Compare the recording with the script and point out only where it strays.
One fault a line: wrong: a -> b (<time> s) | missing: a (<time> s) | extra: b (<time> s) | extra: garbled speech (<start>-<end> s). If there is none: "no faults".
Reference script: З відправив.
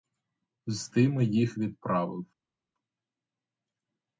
extra: тими їх (0.9 s)